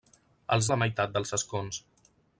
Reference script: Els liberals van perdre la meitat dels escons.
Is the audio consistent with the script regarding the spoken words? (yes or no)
no